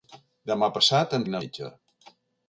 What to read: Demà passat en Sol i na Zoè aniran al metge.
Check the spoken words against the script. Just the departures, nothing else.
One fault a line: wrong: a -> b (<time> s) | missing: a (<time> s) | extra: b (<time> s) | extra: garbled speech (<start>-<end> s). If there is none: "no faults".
missing: Sol (1.2 s)
missing: Zoè aniran al (1.4 s)